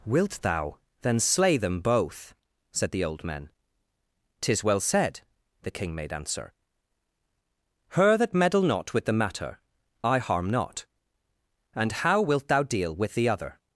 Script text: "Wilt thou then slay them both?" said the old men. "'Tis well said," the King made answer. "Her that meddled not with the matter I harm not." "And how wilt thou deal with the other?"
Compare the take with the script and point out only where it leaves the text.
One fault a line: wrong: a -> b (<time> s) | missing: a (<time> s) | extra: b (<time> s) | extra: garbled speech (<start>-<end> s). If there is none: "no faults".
wrong: meddled -> meddle (8.3 s)